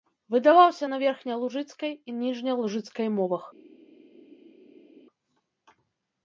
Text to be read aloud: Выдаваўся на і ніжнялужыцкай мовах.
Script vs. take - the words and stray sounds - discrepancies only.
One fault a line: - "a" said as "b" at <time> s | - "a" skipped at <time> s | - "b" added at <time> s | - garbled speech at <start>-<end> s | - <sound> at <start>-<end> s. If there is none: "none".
- "верхнялужыцкай" added at 1.0 s